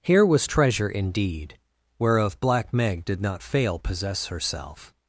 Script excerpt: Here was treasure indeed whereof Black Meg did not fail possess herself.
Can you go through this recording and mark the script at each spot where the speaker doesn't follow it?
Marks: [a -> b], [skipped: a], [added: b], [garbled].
Here was treasure indeed whereof Black Meg did not fail possess herself.